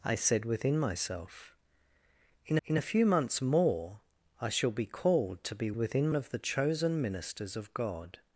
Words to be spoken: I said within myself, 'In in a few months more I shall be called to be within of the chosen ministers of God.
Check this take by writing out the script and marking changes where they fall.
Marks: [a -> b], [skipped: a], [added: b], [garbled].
I said within myself, 'In in a few months more I shall be called to be within of the chosen ministers of God.